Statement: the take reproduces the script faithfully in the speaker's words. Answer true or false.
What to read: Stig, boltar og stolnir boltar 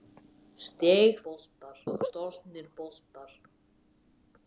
true